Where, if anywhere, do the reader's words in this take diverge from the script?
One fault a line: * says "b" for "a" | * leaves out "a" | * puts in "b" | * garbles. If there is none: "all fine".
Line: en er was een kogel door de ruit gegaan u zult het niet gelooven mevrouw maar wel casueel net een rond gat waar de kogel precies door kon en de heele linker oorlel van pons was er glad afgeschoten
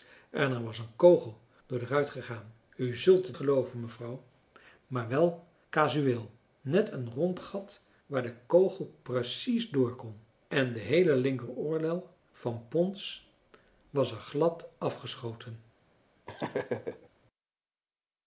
* leaves out "niet"